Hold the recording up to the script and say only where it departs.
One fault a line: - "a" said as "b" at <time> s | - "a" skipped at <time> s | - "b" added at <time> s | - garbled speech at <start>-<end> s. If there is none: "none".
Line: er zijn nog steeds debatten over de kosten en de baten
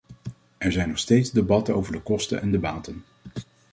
none